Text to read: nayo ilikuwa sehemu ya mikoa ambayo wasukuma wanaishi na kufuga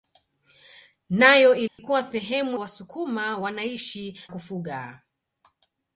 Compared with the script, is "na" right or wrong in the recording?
wrong